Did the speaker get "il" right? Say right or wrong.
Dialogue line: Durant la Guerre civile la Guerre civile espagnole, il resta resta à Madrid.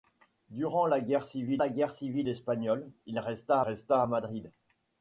right